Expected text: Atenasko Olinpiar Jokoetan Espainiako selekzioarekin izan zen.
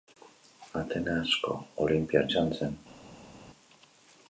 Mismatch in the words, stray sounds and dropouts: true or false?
true